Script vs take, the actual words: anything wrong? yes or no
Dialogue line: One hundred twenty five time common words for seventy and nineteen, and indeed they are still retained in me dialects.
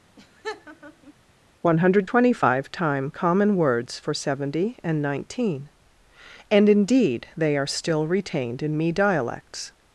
no